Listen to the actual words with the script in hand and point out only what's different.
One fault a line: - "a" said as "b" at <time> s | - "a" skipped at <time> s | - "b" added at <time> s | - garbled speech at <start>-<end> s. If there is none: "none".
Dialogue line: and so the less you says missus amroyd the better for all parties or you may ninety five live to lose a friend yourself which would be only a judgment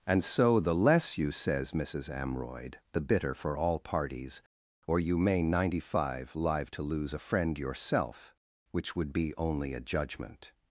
- "better" said as "bitter" at 3.0 s